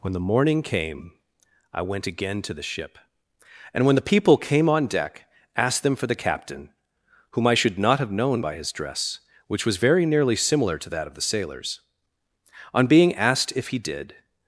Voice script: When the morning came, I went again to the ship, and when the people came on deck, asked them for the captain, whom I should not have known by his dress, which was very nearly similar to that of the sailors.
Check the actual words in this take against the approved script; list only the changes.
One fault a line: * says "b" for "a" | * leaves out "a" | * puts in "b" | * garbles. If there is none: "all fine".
* puts in "On being asked if he did"